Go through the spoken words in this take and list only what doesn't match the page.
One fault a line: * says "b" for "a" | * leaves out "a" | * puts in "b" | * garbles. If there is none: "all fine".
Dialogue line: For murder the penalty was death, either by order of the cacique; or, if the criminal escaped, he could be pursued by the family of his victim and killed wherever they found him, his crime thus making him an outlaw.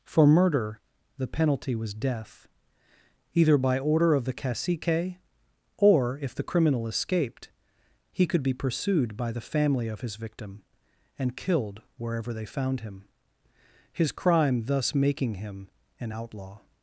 all fine